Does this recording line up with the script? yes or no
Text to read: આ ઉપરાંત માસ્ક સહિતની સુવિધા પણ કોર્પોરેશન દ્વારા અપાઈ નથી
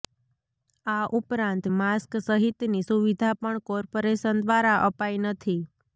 yes